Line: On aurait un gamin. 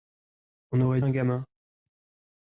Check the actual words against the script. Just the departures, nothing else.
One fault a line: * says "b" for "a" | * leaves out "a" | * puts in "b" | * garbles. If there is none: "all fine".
all fine